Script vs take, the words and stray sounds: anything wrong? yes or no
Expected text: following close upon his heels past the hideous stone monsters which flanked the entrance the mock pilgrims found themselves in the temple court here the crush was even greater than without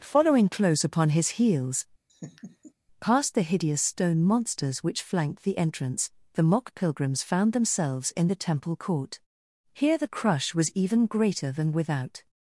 yes